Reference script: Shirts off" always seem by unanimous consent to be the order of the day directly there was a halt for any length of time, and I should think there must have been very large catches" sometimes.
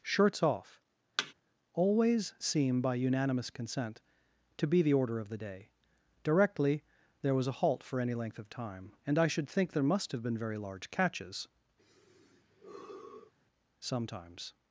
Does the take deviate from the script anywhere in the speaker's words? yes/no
no